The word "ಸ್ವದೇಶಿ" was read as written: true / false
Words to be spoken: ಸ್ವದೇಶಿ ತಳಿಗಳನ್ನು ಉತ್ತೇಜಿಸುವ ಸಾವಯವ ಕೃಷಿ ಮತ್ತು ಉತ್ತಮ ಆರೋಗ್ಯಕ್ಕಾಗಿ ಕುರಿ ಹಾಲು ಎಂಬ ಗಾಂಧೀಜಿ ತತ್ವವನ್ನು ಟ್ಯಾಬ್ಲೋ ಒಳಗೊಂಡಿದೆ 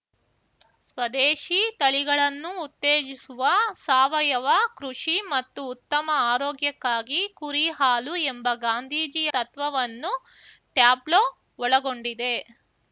true